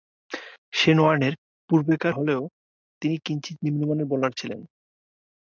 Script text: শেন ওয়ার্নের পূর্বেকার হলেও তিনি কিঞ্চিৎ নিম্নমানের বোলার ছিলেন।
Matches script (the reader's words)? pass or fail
pass